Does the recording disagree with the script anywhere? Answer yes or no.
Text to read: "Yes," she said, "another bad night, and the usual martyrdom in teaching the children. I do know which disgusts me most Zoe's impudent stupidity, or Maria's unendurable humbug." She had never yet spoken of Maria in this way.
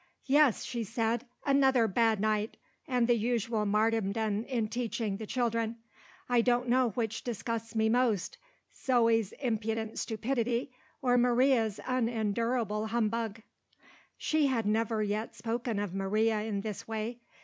yes